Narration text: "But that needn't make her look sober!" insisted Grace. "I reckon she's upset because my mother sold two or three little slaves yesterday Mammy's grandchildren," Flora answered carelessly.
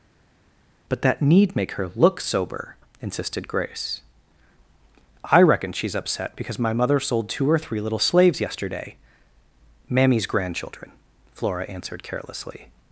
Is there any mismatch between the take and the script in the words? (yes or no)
yes